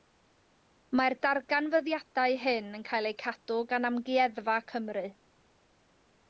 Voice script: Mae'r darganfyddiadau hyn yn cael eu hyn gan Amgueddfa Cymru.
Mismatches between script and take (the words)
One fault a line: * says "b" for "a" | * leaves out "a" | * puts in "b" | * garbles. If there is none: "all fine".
* says "cadw" for "hyn"